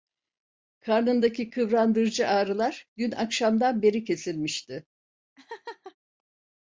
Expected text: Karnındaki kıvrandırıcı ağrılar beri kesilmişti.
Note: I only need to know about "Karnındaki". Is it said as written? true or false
true